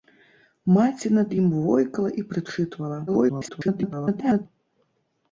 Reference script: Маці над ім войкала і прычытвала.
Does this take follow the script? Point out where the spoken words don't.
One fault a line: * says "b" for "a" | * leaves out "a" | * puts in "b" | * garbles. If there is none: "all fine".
* garbles